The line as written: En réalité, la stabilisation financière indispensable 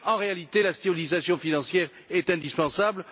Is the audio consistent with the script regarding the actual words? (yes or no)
no